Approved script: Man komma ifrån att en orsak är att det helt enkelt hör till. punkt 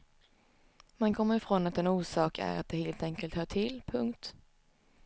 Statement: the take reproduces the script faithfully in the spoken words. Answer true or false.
true